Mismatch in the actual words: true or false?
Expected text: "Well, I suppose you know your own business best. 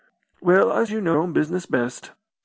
true